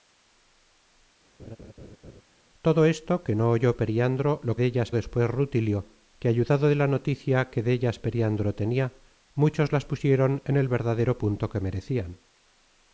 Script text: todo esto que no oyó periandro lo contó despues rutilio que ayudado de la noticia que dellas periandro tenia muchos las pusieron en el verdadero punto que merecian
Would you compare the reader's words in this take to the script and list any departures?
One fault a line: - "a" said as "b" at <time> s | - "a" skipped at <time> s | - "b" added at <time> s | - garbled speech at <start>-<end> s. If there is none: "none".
- "contó" said as "dellas" at 4.6 s